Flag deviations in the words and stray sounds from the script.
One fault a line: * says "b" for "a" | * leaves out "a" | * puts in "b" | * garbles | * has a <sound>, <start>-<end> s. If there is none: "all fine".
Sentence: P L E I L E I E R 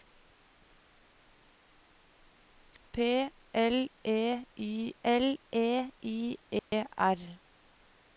* has a dropout, 6.6-6.7 s